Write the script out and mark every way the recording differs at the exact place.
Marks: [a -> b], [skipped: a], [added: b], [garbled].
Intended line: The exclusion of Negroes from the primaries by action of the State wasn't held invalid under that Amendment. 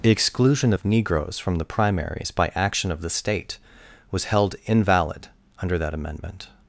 The exclusion of Negroes from the primaries by action of the State [wasn't -> was] held invalid under that Amendment.